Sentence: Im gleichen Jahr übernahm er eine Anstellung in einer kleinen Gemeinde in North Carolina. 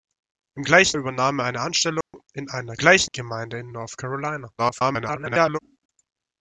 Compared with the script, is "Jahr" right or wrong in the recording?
wrong